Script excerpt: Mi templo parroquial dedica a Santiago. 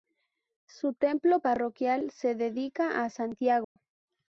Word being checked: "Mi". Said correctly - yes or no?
no